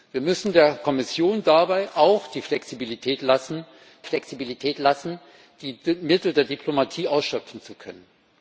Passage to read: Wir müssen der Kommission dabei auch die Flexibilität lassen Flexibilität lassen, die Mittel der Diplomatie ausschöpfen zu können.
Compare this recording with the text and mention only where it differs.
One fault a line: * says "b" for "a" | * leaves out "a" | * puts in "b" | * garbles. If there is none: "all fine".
all fine